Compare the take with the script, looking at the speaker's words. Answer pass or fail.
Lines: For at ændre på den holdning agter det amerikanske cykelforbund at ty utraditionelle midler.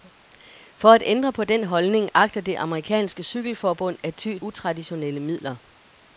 pass